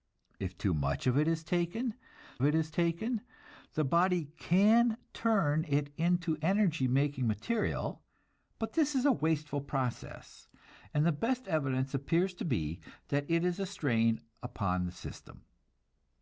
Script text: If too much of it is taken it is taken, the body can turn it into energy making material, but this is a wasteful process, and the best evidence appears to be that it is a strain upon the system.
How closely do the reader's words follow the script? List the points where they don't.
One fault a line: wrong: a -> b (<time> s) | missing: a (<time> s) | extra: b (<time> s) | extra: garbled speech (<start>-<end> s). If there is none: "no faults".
no faults